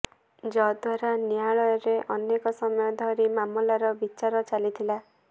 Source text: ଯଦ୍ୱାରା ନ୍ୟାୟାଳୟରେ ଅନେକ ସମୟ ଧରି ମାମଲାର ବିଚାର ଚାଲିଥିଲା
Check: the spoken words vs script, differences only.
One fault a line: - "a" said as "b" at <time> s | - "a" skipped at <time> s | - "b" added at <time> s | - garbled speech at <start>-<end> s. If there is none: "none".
none